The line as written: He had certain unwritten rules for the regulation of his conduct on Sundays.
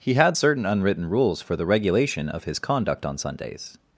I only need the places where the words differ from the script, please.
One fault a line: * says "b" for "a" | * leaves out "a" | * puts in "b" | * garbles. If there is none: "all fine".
all fine